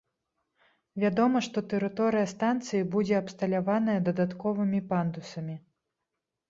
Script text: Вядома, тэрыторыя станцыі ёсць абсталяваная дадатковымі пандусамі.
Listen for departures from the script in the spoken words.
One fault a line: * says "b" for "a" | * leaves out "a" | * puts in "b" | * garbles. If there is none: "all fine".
* puts in "што"
* says "будзе" for "ёсць"